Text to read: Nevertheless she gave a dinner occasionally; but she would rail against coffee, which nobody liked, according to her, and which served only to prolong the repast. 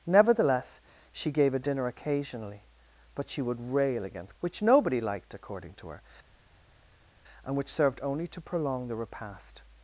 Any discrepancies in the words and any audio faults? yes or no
yes